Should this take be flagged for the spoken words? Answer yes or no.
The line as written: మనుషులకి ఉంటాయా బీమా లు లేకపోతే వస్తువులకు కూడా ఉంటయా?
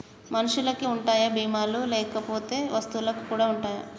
no